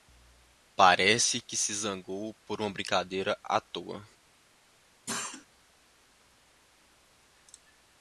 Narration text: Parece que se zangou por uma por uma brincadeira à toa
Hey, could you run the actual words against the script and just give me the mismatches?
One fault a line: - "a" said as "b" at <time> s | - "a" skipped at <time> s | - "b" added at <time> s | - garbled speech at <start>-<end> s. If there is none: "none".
- "por uma" skipped at 2.7 s